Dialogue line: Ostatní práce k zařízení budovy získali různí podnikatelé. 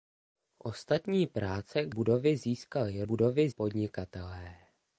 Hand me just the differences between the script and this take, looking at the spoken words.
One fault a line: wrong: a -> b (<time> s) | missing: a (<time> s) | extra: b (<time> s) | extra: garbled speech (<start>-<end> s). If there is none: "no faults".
missing: zařízení (1.9 s)
wrong: různí -> budovy (3.0 s)